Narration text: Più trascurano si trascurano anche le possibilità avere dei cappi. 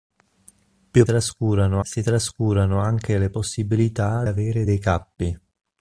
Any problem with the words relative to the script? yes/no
no